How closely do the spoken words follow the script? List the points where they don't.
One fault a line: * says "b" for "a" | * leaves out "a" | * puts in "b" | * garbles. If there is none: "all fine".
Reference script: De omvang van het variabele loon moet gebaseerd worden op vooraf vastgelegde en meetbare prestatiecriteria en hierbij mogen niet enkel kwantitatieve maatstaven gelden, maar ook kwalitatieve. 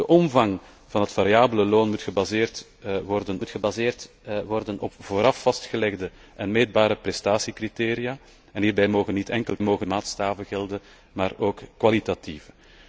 * puts in "moet gebaseerd worden"
* says "mogen" for "kwantitatieve"